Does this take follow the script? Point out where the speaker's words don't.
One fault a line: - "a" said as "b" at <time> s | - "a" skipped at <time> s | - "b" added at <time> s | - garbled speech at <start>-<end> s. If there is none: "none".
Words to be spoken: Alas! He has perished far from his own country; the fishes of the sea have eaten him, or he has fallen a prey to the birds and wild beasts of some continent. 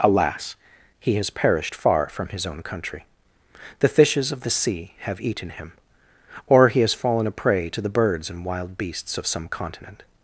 none